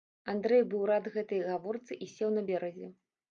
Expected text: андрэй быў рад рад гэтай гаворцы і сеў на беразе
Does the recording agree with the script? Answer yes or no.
no